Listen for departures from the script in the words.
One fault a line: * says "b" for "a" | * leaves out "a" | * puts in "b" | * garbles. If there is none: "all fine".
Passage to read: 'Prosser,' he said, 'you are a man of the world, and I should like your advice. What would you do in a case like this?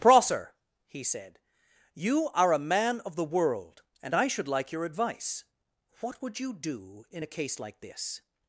all fine